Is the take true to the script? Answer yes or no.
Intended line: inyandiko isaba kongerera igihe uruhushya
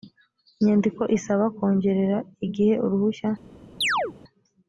yes